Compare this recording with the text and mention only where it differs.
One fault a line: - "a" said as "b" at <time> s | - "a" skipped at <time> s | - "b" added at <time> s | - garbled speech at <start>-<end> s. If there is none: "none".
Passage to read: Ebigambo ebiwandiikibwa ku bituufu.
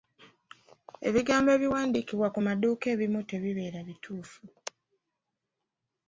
- "maduuka ebimu tebibeera" added at 2.5 s